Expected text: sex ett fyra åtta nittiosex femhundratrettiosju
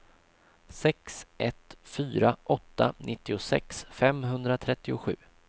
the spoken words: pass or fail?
pass